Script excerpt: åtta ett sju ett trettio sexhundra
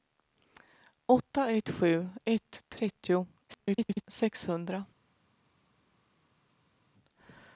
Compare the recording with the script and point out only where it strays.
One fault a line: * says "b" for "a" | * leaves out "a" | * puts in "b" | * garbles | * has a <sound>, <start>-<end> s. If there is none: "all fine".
* garbles